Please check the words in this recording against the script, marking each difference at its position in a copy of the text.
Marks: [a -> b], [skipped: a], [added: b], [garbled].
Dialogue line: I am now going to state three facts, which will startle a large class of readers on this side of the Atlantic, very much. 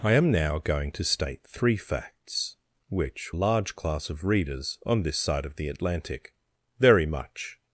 I am now going to state three facts, which [skipped: will startle a] large class of readers on this side of the Atlantic, very much.